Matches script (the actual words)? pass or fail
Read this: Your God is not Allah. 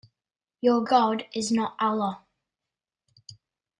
pass